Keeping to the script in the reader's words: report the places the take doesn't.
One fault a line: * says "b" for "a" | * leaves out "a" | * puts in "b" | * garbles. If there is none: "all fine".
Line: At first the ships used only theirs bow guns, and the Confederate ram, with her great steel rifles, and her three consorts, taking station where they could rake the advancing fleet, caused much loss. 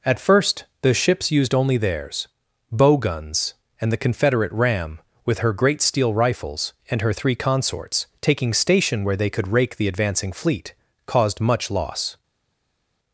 all fine